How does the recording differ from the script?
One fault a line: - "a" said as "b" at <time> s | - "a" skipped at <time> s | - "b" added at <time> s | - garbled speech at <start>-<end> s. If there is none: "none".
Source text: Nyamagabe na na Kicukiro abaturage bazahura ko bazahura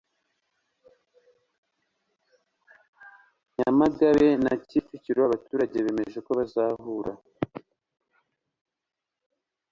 - "na" skipped at 4.5 s
- "bazahura" said as "bemeje" at 5.8 s